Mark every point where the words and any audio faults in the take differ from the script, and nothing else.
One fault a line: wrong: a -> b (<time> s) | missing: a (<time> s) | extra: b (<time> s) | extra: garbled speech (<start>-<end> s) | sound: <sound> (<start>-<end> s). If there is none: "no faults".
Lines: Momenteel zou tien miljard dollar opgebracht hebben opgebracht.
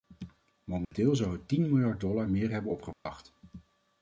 sound: dropout (0.8-0.9 s)
extra: het (1.3 s)
wrong: opgebracht -> meer (2.3 s)
sound: dropout (2.9-3.1 s)